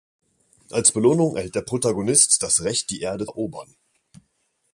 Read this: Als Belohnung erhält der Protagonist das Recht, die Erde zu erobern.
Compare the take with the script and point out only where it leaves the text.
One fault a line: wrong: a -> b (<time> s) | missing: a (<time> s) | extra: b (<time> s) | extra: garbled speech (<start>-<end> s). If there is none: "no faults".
missing: zu (3.3 s)